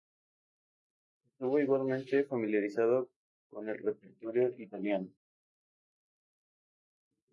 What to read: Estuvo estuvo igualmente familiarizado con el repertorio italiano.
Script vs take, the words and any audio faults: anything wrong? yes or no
yes